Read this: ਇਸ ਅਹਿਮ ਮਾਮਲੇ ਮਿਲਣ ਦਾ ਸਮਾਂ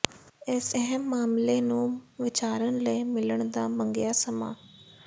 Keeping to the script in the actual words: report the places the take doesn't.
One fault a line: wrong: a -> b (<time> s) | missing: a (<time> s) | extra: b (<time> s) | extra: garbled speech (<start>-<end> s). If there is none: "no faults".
extra: ਨੂੰ ਵਿਚਾਰਨ ਲਈ (1.6 s)
extra: ਮੰਗਿਆ (3.7 s)